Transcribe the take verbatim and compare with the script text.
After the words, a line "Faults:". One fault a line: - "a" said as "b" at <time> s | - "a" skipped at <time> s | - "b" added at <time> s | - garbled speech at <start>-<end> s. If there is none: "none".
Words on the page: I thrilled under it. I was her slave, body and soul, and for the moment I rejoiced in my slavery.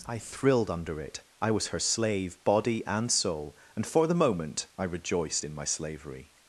I thrilled under it. I was her slave, body and soul, and for the moment I rejoiced in my slavery.
Faults:
none